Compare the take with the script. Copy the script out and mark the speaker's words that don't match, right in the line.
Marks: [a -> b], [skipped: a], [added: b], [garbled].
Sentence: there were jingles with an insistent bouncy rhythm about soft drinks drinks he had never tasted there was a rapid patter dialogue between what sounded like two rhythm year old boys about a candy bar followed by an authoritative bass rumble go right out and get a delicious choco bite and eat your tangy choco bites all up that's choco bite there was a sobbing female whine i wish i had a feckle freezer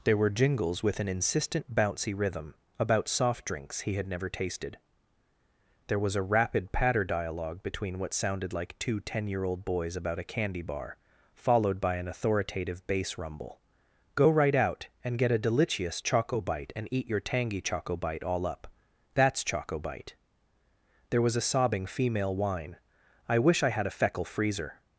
there were jingles with an insistent bouncy rhythm about soft drinks [skipped: drinks] he had never tasted there was a rapid patter dialogue between what sounded like two [rhythm -> ten] year old boys about a candy bar followed by an authoritative bass rumble go right out and get a delicious choco bite and eat your tangy choco [bites -> bite] all up that's choco bite there was a sobbing female whine i wish i had a feckle freezer